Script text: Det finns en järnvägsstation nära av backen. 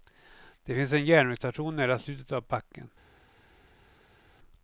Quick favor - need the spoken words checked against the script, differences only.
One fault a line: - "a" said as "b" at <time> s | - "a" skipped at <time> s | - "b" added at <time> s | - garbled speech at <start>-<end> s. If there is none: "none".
- "slutet" added at 2.0 s